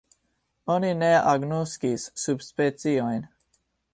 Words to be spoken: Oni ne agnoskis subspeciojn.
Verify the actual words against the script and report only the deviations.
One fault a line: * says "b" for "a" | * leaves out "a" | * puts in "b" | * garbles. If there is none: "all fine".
all fine